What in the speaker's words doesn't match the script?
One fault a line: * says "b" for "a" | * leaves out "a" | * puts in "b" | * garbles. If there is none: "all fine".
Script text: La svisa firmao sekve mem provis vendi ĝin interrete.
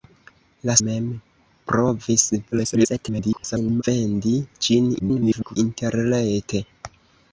* leaves out "svisa firmao sekve"
* garbles
* garbles